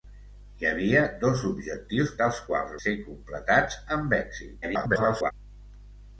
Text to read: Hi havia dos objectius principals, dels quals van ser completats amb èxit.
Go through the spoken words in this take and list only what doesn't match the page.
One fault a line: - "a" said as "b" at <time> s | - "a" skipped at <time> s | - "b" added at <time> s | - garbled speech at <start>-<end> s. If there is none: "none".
- "principals" skipped at 2.1 s
- "van" skipped at 2.7 s
- garbled speech at 4.6-5.3 s